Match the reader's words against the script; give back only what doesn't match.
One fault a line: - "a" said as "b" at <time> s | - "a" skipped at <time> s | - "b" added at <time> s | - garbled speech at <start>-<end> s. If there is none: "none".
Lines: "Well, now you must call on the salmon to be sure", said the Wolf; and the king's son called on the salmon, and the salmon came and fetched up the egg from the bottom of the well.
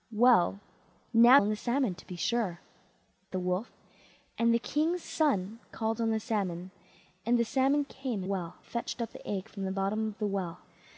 - "you must call" skipped at 1.4 s
- "said" skipped at 2.6 s
- "and" said as "well" at 8.2 s